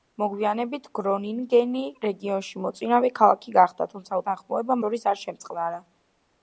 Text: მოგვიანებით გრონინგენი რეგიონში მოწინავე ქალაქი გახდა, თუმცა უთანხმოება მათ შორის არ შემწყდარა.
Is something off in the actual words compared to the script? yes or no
yes